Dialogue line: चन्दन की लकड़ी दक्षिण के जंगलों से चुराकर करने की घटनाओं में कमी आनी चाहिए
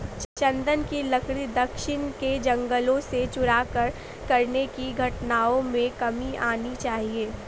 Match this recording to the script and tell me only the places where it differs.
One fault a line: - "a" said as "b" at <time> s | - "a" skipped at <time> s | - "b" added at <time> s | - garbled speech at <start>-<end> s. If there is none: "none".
none